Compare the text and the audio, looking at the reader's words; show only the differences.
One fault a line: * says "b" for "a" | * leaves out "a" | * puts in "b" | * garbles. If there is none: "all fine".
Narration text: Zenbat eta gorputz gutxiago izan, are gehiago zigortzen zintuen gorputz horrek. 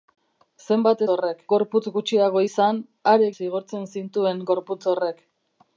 * says "horrek" for "eta"
* leaves out "gehiago"